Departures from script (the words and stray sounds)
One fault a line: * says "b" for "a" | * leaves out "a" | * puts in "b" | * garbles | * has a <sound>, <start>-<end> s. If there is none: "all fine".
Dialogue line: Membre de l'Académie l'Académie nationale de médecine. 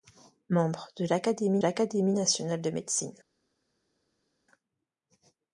all fine